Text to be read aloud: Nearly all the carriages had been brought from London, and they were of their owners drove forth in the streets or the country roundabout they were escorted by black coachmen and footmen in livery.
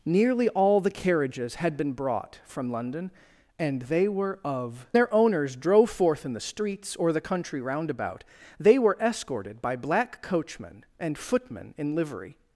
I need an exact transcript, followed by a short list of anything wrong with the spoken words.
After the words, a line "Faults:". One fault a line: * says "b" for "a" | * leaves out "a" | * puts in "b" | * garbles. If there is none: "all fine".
Nearly all the carriages had been brought from London, and they were of their owners drove forth in the streets or the country roundabout they were escorted by black coachmen and footmen in livery.
Faults:
all fine